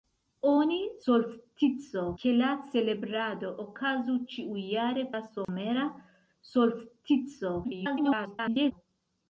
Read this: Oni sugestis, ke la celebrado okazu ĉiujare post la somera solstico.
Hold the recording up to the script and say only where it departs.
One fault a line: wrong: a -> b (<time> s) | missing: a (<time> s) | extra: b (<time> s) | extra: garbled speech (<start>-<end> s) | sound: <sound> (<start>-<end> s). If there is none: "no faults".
wrong: sugestis -> solstico (1.1 s)
missing: post (5.1 s)
sound: dropout (5.4-5.5 s)
extra: garbled speech (7.6-8.7 s)